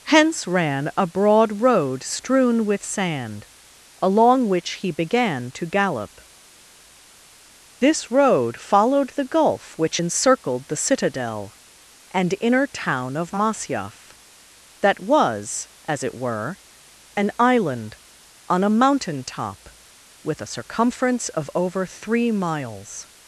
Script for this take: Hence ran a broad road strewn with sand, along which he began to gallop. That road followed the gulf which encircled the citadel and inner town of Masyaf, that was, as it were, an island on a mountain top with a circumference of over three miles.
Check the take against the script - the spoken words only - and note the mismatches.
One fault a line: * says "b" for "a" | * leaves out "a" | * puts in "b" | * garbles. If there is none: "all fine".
* says "This" for "That"